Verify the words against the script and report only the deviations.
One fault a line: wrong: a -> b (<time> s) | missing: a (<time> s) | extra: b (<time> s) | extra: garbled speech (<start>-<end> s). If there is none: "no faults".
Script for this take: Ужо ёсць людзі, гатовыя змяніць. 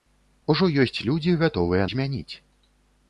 no faults